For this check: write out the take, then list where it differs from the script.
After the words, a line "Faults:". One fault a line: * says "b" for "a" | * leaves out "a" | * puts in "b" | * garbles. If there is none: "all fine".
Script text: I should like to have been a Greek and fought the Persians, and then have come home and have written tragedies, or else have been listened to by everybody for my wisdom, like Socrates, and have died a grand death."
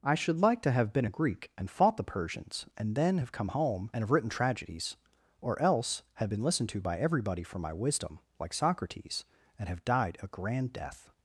I should like to have been a Greek and fought the Persians, and then have come home and have written tragedies, or else have been listened to by everybody for my wisdom, like Socrates, and have died a grand death."
Faults:
all fine